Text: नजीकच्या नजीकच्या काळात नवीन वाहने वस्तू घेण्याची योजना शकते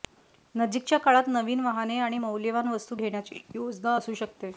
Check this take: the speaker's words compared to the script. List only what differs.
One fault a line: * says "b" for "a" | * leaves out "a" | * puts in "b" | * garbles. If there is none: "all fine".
* leaves out "नजीकच्या"
* puts in "आणि मौल्यवान"
* puts in "असू"